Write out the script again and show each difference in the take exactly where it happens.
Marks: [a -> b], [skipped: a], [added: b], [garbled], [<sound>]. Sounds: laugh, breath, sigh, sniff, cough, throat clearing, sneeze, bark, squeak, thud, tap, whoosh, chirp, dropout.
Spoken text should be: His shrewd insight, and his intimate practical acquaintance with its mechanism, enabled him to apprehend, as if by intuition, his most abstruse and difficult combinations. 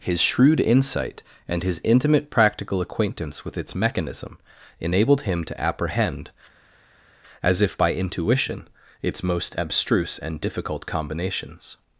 His shrewd insight, and his intimate practical acquaintance with its mechanism, enabled him to apprehend, as if by intuition, [his -> its] most abstruse and difficult combinations.